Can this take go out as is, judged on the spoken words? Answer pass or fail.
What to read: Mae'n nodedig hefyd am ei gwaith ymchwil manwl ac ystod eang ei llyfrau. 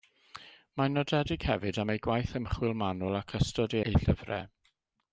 fail